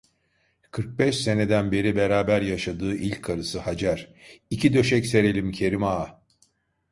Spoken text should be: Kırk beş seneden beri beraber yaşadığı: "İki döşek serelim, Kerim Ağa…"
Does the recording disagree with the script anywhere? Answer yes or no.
yes